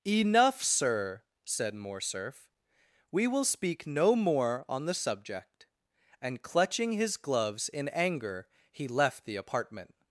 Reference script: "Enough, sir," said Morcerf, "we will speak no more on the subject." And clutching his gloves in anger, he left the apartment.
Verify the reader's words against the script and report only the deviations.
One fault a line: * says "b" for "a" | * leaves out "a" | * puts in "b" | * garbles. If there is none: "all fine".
all fine